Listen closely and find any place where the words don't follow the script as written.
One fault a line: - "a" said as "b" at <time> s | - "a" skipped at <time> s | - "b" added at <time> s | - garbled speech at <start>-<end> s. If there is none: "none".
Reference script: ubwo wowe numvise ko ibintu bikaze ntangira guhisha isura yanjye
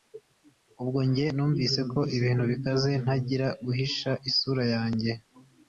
- "wowe" said as "njye" at 1.1 s